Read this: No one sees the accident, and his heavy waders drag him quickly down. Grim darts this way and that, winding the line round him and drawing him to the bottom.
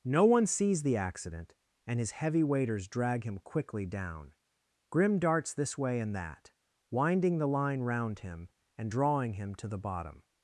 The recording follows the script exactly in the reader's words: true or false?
true